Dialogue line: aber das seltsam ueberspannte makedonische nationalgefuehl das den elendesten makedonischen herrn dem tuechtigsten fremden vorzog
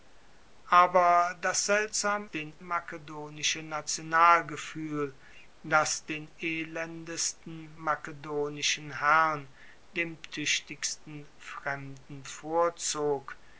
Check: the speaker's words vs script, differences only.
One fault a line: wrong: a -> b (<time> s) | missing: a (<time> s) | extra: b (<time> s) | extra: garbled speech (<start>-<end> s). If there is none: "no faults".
wrong: ueberspannte -> den (2.3 s)